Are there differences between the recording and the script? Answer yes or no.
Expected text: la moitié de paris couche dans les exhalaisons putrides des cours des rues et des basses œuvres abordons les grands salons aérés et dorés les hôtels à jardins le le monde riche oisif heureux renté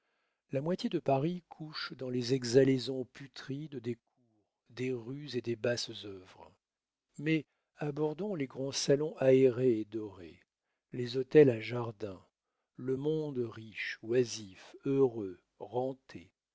yes